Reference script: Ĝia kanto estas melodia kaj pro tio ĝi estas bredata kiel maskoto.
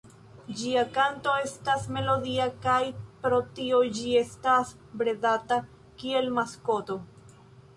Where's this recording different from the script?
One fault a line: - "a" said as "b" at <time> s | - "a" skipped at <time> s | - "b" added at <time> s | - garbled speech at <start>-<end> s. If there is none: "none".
none